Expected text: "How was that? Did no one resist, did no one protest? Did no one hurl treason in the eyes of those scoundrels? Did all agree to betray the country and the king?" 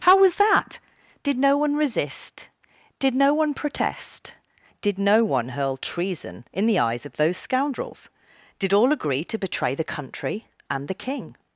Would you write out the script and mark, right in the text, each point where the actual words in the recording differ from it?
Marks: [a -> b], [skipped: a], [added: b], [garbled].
"How was that? Did no one resist, did no one protest? Did no one hurl treason in the eyes of those scoundrels? Did all agree to betray the country and the king?"